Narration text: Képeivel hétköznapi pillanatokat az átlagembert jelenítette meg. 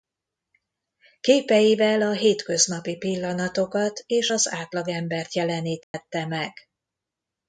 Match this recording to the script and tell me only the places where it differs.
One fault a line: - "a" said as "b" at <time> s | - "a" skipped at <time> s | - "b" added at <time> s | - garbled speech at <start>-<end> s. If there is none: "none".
- "a" added at 2.0 s
- "és" added at 4.0 s